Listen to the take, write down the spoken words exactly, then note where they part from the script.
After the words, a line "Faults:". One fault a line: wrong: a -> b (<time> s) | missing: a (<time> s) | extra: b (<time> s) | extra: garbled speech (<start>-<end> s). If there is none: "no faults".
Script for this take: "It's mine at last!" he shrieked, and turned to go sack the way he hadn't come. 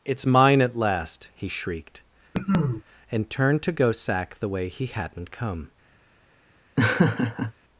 "It's mine at last!" he shrieked, and turned to go sack the way he hadn't come.
Faults:
no faults